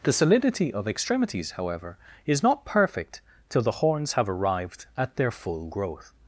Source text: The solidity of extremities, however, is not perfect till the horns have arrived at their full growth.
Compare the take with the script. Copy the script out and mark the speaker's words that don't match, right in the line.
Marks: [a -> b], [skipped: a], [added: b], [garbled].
The solidity of extremities, however, is not perfect till the horns have arrived at their full growth.